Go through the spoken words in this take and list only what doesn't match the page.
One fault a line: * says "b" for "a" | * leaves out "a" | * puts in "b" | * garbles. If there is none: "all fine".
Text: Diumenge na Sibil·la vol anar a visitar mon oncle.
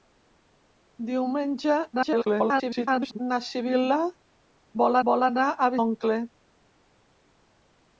* garbles
* puts in "vol"
* leaves out "visitar mon"